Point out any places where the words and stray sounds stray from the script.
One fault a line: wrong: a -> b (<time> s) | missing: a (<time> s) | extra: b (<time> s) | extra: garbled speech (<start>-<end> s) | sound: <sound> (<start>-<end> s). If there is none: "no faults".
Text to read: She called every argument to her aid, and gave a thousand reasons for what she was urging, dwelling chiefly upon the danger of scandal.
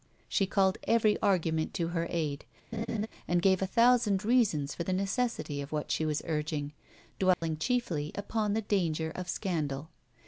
sound: laugh (2.7-3.1 s)
extra: the necessity of (4.8 s)
sound: dropout (7.3-7.4 s)